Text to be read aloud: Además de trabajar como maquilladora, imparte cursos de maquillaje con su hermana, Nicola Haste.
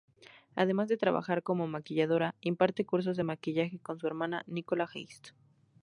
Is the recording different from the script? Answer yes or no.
no